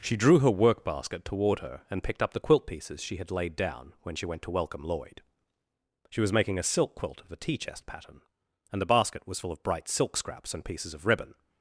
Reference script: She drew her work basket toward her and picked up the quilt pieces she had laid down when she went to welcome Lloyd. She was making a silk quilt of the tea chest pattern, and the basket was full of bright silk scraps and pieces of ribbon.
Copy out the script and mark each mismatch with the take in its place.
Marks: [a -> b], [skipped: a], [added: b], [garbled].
She drew her work basket toward her and picked up the quilt pieces she had laid down when she went to welcome Lloyd. She was making a silk quilt of the tea chest pattern, and the basket was full of bright silk scraps and pieces of ribbon.